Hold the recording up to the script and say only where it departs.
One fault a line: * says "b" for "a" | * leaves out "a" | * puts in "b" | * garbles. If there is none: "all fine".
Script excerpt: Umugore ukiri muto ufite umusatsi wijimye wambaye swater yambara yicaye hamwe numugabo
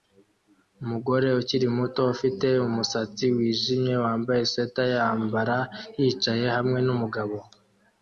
all fine